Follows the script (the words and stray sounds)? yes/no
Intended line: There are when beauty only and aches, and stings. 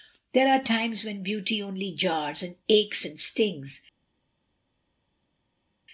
no